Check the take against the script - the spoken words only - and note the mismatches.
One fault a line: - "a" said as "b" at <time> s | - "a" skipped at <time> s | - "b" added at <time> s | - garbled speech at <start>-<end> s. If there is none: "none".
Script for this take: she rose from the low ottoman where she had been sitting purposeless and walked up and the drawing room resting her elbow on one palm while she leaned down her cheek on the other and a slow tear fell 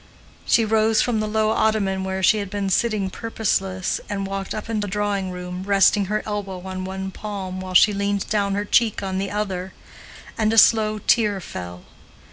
none